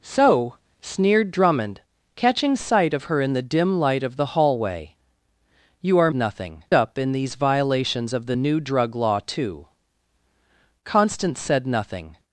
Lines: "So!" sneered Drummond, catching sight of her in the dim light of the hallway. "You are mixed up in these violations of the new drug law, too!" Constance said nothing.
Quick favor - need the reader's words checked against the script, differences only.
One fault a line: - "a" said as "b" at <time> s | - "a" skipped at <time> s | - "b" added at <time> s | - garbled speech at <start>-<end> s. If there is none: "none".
- "mixed" said as "nothing" at 6.1 s